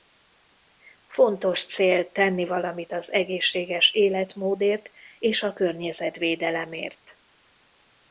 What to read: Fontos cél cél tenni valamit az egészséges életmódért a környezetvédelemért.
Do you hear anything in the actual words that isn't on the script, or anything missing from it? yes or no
yes